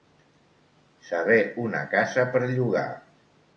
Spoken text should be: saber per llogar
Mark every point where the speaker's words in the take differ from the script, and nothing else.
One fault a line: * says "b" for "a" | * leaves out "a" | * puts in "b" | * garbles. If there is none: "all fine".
* puts in "una casa"